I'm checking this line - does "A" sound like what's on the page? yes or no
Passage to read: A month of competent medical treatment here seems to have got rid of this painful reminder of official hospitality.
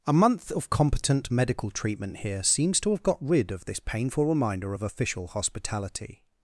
yes